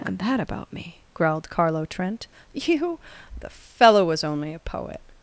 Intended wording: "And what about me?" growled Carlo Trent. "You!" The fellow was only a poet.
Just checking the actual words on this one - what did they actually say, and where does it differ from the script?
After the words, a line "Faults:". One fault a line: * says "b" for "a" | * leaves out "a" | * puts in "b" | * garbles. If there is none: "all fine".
"And that about me?" growled Carlo Trent. "You!" The fellow was only a poet.
Faults:
* says "that" for "what"